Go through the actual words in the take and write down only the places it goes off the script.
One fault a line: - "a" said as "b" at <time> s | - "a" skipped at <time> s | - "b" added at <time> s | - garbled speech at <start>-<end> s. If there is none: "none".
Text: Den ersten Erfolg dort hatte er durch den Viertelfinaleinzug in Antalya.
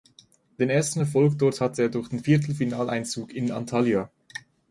none